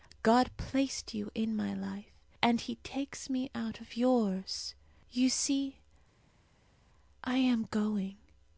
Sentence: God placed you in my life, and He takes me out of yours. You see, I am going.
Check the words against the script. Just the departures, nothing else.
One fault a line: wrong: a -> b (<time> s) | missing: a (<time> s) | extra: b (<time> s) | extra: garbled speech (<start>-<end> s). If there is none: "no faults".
no faults